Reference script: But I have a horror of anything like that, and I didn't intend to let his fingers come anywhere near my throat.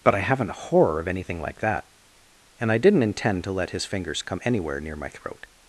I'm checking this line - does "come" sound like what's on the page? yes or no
yes